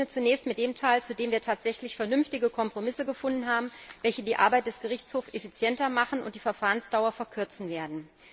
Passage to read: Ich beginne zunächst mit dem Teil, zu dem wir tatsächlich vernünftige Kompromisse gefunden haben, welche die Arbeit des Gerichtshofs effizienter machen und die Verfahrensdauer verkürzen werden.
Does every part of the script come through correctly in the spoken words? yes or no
yes